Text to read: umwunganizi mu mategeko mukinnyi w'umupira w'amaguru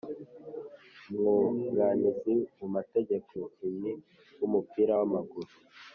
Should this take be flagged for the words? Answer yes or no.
no